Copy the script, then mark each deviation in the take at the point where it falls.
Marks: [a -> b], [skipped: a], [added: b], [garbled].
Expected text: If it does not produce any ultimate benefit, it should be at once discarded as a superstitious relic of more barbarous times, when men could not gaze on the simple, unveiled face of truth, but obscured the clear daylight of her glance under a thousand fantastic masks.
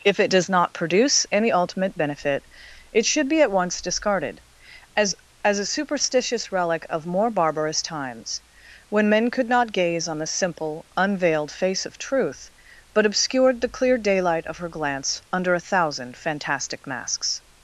If it does not produce any ultimate benefit, it should be at once discarded as [added: as] a superstitious relic of more barbarous times, when men could not gaze on the simple, unveiled face of truth, but obscured the clear daylight of her glance under a thousand fantastic masks.